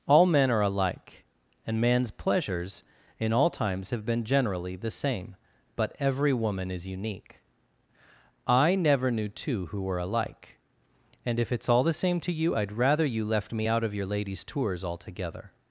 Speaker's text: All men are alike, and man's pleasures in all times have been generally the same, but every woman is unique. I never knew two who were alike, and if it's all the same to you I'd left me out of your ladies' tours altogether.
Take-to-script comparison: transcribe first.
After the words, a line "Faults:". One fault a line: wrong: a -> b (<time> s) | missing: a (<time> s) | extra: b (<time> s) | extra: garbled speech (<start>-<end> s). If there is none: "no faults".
All men are alike, and man's pleasures in all times have been generally the same, but every woman is unique. I never knew two who were alike, and if it's all the same to you I'd rather you left me out of your ladies' tours altogether.
Faults:
extra: rather you (12.7 s)